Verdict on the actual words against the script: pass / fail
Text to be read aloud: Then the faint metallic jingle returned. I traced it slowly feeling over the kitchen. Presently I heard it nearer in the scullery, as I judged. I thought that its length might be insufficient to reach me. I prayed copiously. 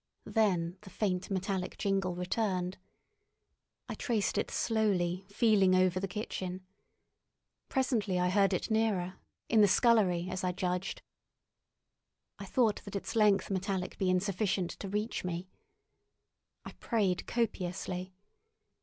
fail